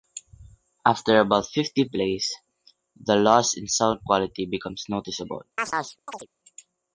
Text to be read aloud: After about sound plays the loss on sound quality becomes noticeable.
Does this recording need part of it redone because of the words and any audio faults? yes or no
yes